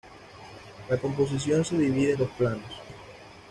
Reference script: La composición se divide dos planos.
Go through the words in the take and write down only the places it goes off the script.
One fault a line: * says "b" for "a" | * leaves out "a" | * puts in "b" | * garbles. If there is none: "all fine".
all fine